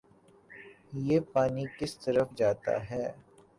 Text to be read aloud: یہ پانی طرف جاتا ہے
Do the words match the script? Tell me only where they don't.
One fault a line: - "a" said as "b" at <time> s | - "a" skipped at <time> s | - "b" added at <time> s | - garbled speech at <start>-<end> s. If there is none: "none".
- "کس" added at 1.8 s